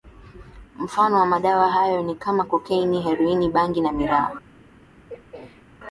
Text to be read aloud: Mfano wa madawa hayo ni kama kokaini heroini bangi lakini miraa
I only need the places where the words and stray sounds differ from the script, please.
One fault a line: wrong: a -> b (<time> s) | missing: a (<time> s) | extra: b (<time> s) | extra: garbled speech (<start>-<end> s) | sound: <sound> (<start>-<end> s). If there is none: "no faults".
wrong: lakini -> na (3.8 s)
sound: throat clearing (5.1-5.6 s)